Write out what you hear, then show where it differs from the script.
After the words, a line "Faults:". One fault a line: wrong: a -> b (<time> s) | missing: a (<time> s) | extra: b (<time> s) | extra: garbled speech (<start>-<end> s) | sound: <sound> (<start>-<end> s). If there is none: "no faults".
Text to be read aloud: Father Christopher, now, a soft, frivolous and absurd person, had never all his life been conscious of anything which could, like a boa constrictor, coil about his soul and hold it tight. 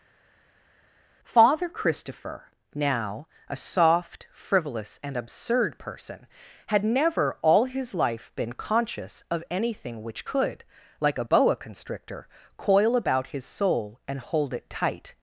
Father Christopher, now, a soft, frivolous and absurd person, had never all his life been conscious of anything which could, like a boa constrictor, coil about his soul and hold it tight.
Faults:
no faults